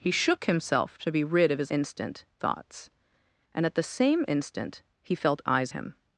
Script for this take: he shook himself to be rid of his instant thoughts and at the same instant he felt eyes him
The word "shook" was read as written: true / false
true